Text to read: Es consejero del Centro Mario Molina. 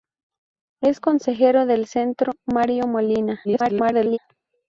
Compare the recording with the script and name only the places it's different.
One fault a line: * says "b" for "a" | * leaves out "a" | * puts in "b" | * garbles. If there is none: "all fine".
* garbles